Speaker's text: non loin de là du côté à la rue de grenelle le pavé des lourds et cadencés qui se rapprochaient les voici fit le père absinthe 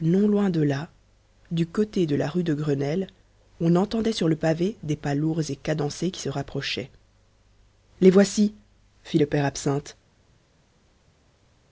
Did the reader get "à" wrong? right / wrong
wrong